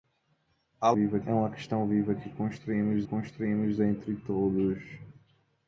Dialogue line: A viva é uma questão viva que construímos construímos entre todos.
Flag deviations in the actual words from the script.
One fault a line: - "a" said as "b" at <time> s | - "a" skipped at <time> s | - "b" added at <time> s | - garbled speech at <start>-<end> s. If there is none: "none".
none